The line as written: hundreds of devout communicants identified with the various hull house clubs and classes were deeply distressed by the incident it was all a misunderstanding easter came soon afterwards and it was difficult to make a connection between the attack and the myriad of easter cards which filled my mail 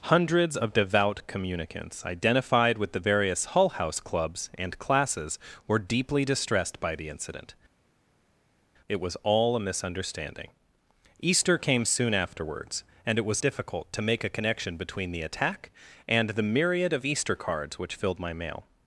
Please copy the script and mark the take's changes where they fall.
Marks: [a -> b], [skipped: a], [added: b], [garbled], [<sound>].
hundreds of devout communicants identified with the various hull house clubs and classes were deeply distressed by the incident it was all a misunderstanding easter came soon afterwards and it was difficult to make a connection between the attack and the myriad of easter cards which filled my mail